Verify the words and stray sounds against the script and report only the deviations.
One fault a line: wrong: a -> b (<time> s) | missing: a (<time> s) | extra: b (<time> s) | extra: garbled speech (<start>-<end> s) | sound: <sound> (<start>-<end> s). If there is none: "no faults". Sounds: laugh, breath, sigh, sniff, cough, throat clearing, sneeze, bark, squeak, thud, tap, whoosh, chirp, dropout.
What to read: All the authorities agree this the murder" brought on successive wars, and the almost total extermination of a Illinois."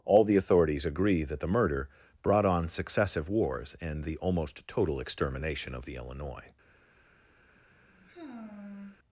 wrong: this -> that (1.2 s)
wrong: a -> the (5.8 s)
sound: sigh (7.4-9.0 s)